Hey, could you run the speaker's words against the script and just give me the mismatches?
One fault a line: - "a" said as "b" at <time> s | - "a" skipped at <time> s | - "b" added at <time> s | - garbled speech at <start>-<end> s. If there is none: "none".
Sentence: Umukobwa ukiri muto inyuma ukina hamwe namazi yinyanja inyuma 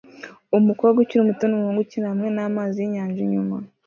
- "inyuma" said as "numuhungu" at 1.5 s